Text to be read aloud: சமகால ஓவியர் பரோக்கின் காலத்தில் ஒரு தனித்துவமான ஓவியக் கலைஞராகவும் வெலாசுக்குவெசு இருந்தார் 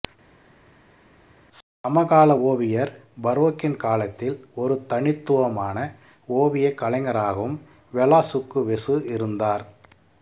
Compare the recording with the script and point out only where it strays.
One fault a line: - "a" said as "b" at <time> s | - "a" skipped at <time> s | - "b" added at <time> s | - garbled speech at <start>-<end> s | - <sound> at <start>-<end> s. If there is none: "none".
none